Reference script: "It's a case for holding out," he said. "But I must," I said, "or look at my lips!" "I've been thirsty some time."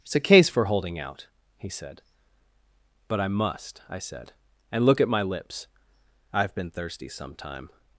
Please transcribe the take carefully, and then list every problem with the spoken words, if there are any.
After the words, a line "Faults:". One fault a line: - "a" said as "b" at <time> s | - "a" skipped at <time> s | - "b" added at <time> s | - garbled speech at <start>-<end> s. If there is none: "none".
"It's a case for holding out," he said. "But I must," I said, "and look at my lips!" "I've been thirsty some time."
Faults:
- "or" said as "and" at 4.7 s